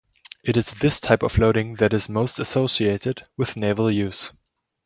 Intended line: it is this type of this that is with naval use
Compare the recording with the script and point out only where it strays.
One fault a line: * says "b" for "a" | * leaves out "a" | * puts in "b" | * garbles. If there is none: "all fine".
* says "loading" for "this"
* puts in "most associated"